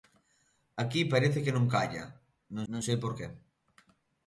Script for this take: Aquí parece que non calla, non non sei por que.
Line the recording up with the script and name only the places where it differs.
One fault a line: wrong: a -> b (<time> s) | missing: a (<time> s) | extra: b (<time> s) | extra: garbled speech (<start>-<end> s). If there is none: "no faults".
no faults